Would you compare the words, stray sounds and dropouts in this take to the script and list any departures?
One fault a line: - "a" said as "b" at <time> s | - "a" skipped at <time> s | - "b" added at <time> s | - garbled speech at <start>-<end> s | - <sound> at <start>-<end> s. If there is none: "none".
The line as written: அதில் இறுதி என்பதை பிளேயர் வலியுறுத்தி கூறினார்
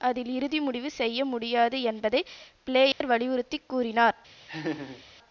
- "முடிவு செய்ய முடியாது" added at 0.6 s
- dropout at 2.9-3.0 s
- laugh at 4.5-5.0 s